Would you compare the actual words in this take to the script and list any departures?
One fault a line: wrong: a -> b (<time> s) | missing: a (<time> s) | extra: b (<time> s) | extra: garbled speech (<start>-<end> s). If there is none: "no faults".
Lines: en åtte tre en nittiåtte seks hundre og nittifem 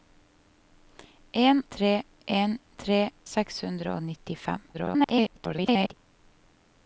missing: åtte (1.6 s)
wrong: nittiåtte -> tre (2.8 s)
extra: garbled speech (4.7-5.9 s)